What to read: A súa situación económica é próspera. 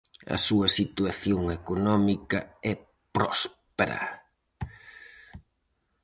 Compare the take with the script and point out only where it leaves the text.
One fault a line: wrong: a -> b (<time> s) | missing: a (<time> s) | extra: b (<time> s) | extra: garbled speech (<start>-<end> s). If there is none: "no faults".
no faults